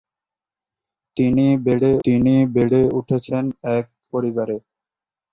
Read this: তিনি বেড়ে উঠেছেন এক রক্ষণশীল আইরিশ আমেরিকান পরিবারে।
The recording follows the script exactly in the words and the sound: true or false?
false